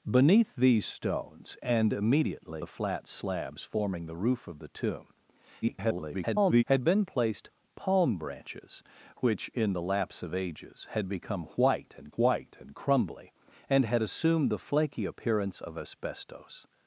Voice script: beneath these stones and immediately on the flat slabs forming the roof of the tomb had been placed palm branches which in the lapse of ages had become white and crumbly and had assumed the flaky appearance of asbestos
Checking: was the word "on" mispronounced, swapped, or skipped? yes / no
yes